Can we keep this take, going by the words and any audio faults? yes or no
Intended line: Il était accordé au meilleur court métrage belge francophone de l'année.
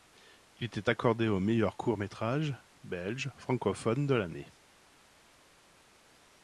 yes